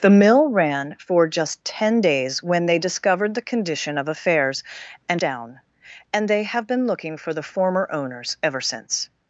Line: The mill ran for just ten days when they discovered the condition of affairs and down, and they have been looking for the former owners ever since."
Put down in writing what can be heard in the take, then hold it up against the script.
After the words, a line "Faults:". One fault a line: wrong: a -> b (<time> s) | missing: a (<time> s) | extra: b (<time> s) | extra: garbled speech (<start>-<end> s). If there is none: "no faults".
The mill ran for just ten days when they discovered the condition of affairs and down, and they have been looking for the former owners ever since."
Faults:
no faults